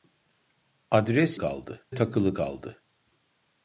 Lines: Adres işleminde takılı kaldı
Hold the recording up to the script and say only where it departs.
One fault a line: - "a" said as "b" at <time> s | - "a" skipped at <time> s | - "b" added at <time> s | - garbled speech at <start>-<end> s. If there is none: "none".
- "işleminde" said as "kaldı" at 1.4 s